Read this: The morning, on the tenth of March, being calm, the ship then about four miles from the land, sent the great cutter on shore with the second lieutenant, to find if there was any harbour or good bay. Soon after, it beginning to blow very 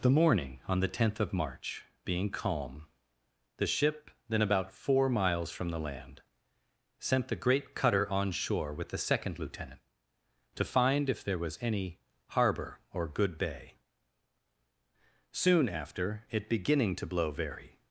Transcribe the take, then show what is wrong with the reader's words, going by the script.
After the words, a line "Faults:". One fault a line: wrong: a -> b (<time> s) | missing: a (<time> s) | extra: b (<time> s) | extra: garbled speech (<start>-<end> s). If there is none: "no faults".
The morning, on the tenth of March, being calm, the ship then about four miles from the land, sent the great cutter on shore with the second lieutenant, to find if there was any harbour or good bay. Soon after, it beginning to blow very
Faults:
no faults